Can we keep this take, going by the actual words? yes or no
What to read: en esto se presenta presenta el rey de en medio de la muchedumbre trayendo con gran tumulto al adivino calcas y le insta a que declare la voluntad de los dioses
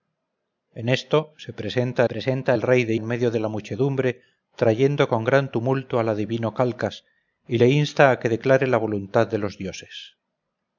yes